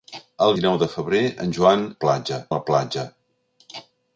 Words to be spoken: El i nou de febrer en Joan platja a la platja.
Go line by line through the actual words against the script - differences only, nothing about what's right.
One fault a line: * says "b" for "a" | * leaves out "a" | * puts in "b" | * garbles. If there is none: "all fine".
all fine